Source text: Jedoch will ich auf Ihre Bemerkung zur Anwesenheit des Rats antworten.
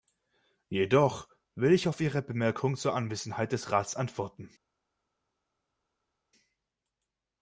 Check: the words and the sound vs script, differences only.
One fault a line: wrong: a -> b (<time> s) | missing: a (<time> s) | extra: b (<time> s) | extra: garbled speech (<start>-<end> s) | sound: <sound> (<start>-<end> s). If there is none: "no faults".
no faults